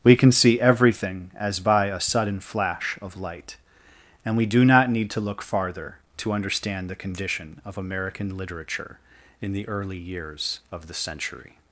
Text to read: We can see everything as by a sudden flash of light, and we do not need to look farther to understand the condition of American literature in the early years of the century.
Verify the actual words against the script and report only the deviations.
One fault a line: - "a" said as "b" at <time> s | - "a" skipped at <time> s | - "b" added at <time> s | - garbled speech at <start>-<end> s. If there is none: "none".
none